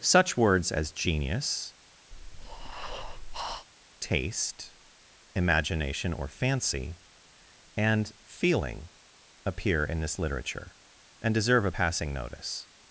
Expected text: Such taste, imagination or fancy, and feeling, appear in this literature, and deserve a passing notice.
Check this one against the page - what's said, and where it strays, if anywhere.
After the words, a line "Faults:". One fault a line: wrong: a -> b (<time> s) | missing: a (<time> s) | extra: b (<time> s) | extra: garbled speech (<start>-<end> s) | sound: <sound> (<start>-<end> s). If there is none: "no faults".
Such words as genius, taste, imagination or fancy, and feeling, appear in this literature, and deserve a passing notice.
Faults:
extra: words as genius (0.3 s)
sound: breath (2.1-3.7 s)